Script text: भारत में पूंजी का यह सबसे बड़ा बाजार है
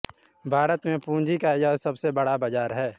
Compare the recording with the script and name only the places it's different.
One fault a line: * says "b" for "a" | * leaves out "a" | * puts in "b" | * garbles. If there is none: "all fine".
all fine